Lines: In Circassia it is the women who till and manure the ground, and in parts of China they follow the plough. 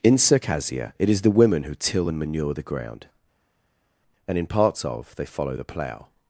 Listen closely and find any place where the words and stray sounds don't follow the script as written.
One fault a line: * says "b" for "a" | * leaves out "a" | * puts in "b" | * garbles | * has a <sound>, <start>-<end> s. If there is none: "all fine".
* leaves out "China"